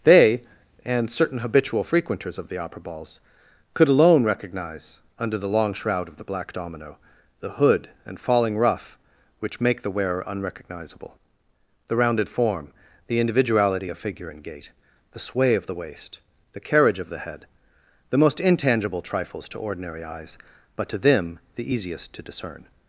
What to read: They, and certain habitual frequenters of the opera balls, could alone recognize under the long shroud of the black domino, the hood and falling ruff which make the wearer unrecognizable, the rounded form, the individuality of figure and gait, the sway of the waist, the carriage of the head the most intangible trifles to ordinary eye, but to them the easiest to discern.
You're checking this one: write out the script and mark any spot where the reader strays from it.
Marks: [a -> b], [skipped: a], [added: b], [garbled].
They, and certain habitual frequenters of the opera balls, could alone recognize under the long shroud of the black domino, the hood and falling ruff which make the wearer unrecognizable, the rounded form, the individuality of figure and gait, the sway of the waist, the carriage of the head the most intangible trifles to ordinary [eye, -> eyes] but to them the easiest to discern.